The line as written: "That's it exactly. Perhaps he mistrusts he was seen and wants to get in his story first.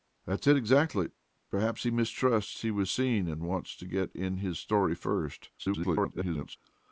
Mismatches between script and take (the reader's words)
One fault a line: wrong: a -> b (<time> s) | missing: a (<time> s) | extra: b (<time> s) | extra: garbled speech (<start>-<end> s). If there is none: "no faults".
extra: garbled speech (5.6-6.6 s)